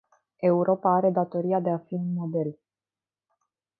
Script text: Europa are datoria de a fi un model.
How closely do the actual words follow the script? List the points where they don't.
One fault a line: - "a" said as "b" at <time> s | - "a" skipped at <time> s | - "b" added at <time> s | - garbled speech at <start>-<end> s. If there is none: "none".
none